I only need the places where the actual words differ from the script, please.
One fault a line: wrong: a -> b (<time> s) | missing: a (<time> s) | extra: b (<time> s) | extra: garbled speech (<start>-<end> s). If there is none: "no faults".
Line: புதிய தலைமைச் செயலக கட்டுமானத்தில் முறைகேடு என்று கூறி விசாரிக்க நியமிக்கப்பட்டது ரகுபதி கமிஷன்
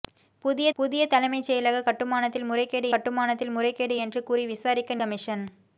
extra: புதிய (0.8 s)
extra: கட்டுமானத்தில் முறைகேடு (2.9 s)
missing: நியமிக்கப்பட்டது ரகுபதி (5.0 s)